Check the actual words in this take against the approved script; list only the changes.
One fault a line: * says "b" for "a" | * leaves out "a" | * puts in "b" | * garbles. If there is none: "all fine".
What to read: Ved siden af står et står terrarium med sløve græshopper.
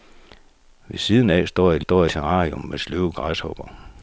all fine